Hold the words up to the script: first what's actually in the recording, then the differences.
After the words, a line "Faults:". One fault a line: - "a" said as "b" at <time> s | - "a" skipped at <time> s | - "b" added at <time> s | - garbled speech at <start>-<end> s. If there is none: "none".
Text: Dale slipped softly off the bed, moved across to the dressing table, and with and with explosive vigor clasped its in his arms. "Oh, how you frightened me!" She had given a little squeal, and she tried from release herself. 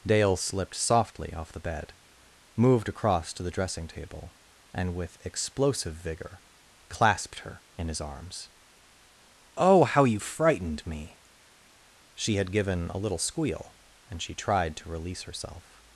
Dale slipped softly off the bed, moved across to the dressing table, and with explosive vigor clasped her in his arms. "Oh, how you frightened me!" She had given a little squeal, and she tried to release herself.
Faults:
- "and with" skipped at 5.2 s
- "its" said as "her" at 7.4 s
- "from" said as "to" at 14.8 s